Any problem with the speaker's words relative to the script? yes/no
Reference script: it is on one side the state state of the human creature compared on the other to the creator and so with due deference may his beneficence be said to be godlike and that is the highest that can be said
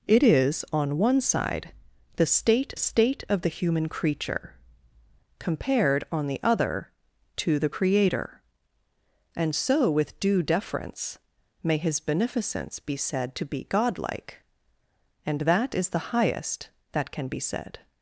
no